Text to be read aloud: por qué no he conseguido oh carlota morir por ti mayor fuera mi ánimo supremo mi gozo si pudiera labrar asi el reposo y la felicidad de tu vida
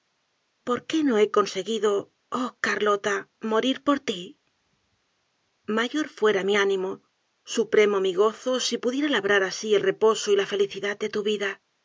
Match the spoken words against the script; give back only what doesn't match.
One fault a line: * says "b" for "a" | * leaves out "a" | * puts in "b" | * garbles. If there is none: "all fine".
all fine